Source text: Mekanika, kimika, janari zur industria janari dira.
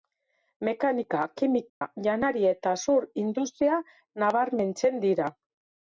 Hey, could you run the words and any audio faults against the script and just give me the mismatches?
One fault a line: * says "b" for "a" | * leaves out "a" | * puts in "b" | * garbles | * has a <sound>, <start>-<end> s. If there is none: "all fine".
* has a dropout, 1.7-1.8 s
* puts in "eta"
* says "nabarmentzen" for "janari"